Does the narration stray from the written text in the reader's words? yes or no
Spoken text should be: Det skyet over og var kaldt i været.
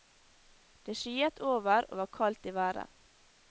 no